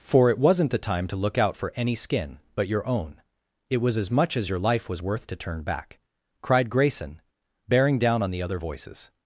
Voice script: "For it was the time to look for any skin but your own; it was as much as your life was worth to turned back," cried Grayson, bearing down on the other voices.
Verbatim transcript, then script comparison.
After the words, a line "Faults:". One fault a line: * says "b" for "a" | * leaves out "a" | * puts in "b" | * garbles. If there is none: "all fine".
"For it wasn't the time to look out for any skin but your own; it was as much as your life was worth to turn back," cried Grayson, bearing down on the other voices.
Faults:
* says "wasn't" for "was"
* puts in "out"
* says "turn" for "turned"